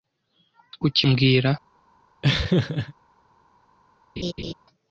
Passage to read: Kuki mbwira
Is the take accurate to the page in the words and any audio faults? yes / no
no